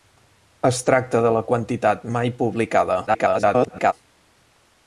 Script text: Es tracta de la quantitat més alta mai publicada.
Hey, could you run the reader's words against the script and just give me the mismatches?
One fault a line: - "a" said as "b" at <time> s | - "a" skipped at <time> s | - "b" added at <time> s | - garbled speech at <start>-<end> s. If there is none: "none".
- "més alta" skipped at 2.1 s
- garbled speech at 3.1-3.9 s